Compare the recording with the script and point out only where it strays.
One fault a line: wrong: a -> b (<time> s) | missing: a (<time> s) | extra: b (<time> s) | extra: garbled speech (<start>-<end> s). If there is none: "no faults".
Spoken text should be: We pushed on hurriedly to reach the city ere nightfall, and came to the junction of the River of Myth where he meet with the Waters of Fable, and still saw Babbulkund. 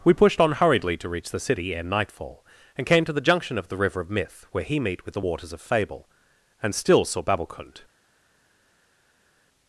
no faults